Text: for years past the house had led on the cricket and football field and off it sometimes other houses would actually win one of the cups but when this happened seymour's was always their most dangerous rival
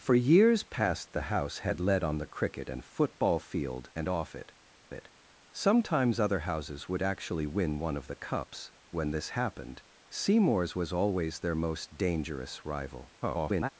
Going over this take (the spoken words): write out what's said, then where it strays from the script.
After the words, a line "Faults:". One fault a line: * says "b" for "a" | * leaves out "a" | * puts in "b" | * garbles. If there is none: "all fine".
for years past the house had led on the cricket and football field and off it it sometimes other houses would actually win one of the cups when this happened seymour's was always their most dangerous rival [garbled]
Faults:
* puts in "it"
* leaves out "but"
* garbles